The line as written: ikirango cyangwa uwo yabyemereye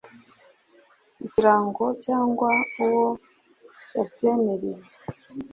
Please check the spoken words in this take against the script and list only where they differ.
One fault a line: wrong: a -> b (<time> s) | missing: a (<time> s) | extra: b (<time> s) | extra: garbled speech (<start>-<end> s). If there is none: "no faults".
no faults